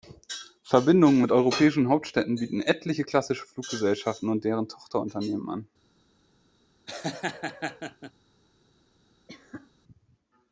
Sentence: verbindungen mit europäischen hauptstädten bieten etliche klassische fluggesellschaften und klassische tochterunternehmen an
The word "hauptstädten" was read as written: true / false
true